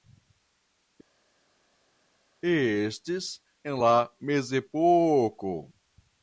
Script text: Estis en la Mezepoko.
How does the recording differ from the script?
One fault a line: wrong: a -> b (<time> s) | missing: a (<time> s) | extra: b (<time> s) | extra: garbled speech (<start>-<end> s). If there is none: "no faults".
no faults